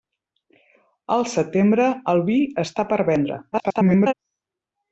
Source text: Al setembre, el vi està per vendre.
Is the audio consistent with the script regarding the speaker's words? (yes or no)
no